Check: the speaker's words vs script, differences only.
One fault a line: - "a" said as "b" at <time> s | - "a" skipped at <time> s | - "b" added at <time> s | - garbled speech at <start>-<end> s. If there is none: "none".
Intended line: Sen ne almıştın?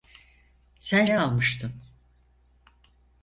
none